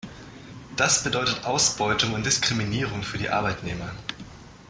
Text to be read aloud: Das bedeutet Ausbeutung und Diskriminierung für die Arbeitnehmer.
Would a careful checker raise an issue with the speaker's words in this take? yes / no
no